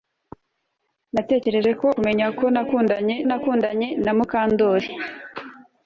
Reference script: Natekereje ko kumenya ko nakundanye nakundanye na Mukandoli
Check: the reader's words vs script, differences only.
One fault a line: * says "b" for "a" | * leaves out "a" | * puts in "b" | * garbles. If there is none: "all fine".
all fine